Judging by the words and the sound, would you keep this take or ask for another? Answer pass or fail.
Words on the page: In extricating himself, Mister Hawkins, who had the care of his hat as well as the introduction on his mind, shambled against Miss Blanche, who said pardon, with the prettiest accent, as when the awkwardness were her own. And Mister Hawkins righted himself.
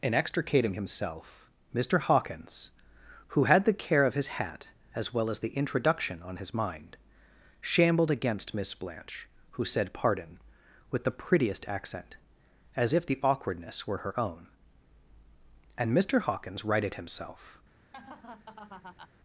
fail